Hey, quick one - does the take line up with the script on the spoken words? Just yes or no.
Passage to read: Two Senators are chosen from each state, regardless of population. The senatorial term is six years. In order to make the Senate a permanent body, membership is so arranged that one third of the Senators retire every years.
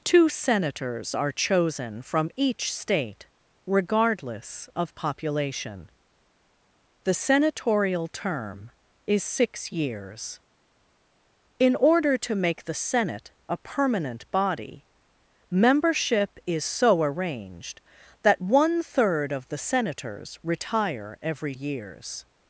yes